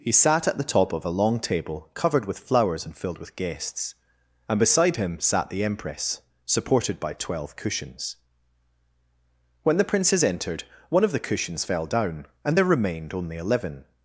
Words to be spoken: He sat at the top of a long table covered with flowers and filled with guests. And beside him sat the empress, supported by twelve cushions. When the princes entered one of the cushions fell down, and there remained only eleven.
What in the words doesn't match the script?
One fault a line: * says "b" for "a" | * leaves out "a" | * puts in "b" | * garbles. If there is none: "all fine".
all fine